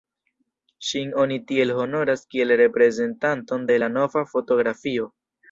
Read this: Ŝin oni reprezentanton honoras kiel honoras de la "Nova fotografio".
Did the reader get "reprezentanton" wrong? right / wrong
wrong